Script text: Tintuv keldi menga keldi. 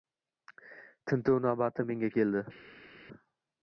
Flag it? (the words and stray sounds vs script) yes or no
yes